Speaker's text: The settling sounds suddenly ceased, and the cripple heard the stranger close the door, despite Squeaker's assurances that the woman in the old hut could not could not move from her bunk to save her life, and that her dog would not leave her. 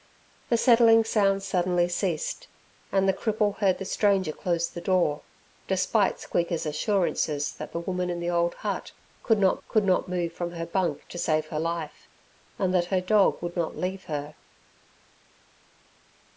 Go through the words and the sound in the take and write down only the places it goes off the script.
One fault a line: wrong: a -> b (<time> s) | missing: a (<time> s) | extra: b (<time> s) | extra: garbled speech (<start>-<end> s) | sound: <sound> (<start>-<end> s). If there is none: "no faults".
no faults